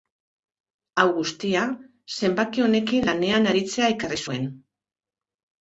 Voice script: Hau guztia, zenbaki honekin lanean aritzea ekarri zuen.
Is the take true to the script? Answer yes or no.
yes